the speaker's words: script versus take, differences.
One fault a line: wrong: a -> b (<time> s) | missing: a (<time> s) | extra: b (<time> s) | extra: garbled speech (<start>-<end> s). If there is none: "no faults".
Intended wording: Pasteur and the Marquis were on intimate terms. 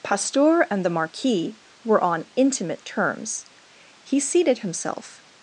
extra: He seated himself (4.0 s)